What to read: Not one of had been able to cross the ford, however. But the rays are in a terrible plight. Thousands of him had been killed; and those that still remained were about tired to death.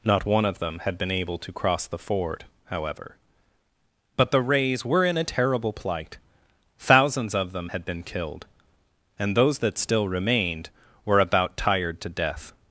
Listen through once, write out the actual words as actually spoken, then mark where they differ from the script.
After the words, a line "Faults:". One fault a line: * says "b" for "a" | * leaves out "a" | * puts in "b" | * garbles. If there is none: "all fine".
Not one of them had been able to cross the ford, however. But the rays were in a terrible plight. Thousands of them had been killed; and those that still remained were about tired to death.
Faults:
* puts in "them"
* says "were" for "are"
* says "them" for "him"